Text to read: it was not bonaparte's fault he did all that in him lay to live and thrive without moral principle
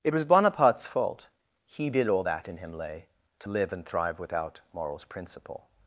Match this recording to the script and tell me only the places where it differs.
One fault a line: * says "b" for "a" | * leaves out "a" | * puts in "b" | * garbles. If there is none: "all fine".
* leaves out "not"
* says "morals" for "moral"